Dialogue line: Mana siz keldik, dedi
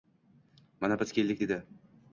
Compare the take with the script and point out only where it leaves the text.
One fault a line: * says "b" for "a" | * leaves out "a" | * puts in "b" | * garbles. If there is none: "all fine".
* says "biz" for "siz"